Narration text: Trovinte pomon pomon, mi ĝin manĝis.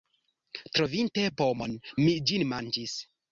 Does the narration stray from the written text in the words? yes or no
yes